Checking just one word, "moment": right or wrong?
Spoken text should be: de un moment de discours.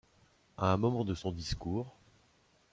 right